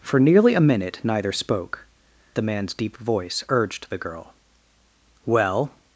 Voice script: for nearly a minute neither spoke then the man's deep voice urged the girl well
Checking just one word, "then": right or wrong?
wrong